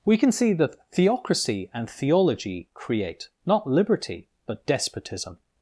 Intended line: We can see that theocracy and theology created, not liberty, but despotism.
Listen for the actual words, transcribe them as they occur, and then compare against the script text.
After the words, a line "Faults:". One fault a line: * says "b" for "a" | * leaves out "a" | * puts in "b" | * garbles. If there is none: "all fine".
We can see that theocracy and theology create, not liberty, but despotism.
Faults:
* says "create" for "created"